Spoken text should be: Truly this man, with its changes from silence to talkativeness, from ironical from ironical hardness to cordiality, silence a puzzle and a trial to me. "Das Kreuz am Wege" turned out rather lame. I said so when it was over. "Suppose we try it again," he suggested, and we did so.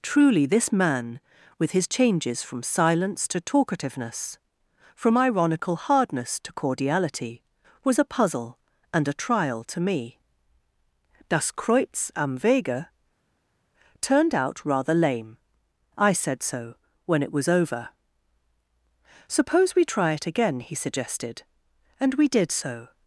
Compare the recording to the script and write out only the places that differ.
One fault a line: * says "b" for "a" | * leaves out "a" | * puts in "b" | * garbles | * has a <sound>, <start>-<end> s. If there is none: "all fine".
* says "his" for "its"
* leaves out "from ironical"
* says "was" for "silence"